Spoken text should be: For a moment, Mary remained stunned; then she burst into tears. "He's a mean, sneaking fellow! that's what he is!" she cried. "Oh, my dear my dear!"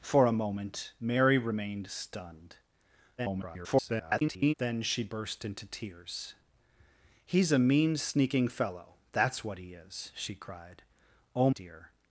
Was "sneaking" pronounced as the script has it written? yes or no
yes